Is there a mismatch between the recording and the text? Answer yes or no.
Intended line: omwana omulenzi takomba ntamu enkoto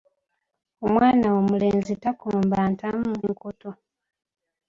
no